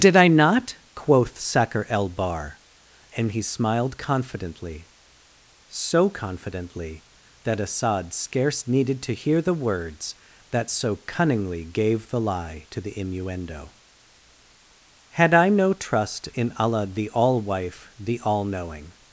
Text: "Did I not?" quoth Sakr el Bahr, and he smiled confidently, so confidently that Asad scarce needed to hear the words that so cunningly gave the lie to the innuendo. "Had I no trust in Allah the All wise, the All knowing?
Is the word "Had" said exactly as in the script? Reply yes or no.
yes